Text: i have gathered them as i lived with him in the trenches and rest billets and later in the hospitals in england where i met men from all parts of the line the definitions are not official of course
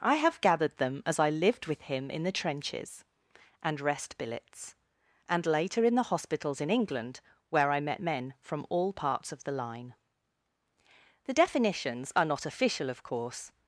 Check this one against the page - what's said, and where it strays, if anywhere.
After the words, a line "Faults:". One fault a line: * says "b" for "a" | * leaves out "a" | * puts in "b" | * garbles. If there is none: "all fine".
i have gathered them as i lived with him in the trenches and rest billets and later in the hospitals in england where i met men from all parts of the line the definitions are not official of course
Faults:
all fine